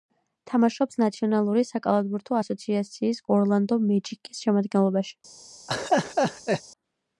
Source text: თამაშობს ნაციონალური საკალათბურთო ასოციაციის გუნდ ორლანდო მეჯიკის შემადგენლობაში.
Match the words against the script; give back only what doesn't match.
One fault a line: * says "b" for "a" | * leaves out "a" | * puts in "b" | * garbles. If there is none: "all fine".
* leaves out "გუნდ"